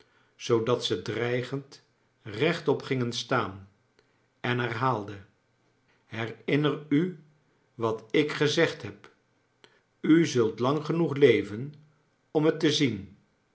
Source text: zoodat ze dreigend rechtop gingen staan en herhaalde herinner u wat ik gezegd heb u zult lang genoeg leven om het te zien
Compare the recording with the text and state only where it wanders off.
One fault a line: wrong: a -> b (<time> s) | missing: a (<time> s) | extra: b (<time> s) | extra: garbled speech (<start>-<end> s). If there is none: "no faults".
no faults